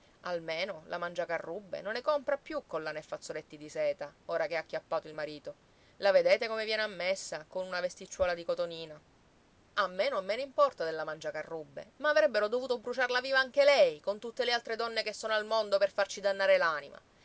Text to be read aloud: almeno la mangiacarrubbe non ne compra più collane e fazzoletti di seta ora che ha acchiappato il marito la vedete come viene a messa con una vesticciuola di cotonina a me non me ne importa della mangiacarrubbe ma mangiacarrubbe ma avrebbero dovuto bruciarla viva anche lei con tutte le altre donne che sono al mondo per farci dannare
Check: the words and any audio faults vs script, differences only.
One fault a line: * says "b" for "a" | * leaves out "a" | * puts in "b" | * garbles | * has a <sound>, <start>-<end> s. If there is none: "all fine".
* leaves out "mangiacarrubbe ma"